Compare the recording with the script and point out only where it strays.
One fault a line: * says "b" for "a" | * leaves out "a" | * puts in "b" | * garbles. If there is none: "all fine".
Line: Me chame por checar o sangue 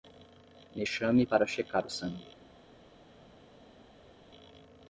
* says "para" for "por"